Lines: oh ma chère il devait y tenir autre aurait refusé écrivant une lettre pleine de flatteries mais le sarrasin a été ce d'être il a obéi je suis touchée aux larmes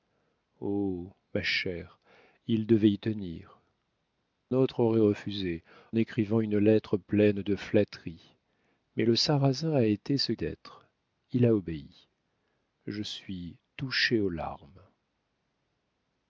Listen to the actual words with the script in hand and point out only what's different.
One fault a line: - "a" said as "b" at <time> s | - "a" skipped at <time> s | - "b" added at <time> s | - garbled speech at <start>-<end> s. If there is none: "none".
none